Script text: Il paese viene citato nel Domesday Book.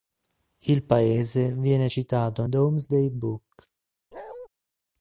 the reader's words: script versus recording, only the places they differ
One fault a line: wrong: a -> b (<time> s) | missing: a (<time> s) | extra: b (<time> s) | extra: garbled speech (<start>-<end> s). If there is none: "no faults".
missing: nel (2.5 s)